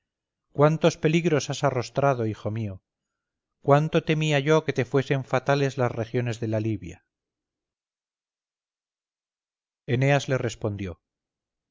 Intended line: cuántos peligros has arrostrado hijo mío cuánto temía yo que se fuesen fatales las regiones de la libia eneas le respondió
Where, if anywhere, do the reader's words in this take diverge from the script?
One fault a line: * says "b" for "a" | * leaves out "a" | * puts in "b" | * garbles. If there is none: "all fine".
* says "te" for "se"